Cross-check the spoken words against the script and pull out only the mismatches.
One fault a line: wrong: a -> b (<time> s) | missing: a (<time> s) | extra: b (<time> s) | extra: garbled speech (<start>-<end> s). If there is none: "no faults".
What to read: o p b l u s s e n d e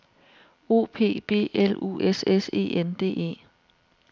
no faults